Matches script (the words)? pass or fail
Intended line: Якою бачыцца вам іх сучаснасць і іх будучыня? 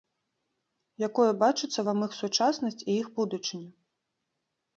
pass